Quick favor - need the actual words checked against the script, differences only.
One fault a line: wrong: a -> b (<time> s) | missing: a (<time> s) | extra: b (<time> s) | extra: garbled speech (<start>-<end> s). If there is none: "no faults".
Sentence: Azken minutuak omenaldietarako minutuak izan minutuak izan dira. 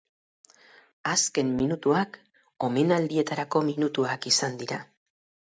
missing: minutuak izan (4.6 s)